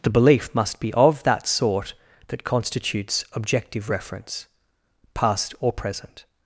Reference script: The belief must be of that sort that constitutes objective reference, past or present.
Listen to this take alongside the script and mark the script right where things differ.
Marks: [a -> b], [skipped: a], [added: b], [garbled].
The belief must be of that sort that constitutes objective reference, past or present.